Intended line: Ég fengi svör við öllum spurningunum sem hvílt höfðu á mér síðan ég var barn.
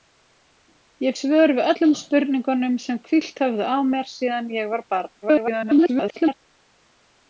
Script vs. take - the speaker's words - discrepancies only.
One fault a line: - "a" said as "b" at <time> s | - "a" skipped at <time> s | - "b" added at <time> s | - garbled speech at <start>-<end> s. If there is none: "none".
- "fengi" skipped at 1.1 s
- garbled speech at 5.2-6.3 s